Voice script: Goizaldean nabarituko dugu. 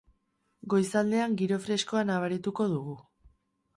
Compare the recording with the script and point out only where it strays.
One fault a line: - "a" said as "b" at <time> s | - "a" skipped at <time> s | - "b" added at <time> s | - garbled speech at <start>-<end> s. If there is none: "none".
- "giro freskoa" added at 1.4 s